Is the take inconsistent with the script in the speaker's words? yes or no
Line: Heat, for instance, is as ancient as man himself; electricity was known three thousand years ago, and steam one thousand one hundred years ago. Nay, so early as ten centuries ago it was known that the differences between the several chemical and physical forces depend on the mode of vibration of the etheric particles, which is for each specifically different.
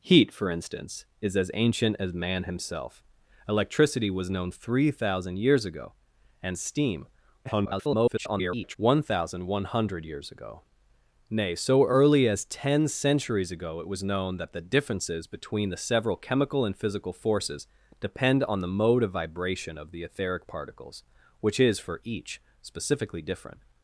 yes